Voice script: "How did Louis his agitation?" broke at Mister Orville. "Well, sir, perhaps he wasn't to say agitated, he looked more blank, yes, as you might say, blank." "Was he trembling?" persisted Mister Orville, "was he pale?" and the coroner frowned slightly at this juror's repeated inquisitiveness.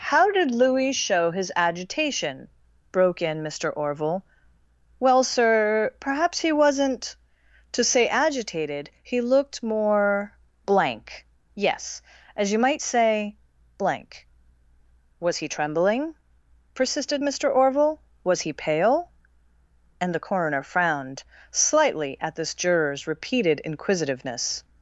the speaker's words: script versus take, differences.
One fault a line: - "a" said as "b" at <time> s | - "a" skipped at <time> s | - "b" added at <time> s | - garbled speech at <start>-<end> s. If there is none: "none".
- "show" added at 0.9 s
- "at" said as "in" at 3.2 s